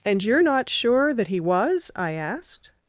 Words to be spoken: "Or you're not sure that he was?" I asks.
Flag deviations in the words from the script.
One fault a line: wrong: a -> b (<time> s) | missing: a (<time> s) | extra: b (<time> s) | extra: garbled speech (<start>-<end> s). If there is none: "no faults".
wrong: Or -> And (0.0 s)
wrong: asks -> asked (2.1 s)